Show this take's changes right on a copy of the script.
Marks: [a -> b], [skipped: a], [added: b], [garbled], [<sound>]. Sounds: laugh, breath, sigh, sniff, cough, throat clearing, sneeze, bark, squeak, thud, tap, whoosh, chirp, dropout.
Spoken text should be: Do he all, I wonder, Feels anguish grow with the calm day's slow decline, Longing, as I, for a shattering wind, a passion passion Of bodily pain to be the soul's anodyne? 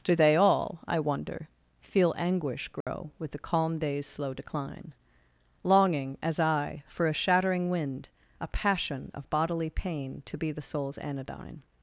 Do [he -> they] all, I wonder, [Feels -> Feel] anguish grow [dropout] with the calm day's slow decline, Longing, as I, for a shattering wind, a passion [skipped: passion] Of bodily pain to be the soul's anodyne?